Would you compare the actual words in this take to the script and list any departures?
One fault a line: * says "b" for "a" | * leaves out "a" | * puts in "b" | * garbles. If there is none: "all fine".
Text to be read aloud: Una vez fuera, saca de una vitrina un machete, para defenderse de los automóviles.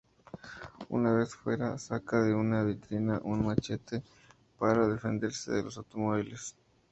all fine